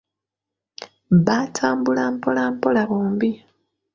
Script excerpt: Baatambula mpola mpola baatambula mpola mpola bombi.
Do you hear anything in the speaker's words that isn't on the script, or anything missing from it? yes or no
yes